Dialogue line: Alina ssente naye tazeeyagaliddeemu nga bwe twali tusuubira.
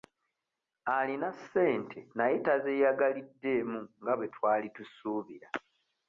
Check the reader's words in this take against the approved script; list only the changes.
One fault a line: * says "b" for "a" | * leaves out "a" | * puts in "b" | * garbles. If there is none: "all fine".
all fine